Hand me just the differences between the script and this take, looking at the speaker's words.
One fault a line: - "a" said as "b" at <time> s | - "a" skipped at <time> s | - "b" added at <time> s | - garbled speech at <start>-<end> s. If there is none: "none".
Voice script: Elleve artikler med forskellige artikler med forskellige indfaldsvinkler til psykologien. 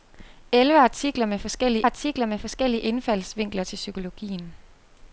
none